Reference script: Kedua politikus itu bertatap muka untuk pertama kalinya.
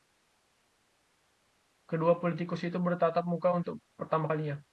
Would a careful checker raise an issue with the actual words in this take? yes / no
no